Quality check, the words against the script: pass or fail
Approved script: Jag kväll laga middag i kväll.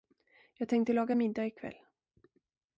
fail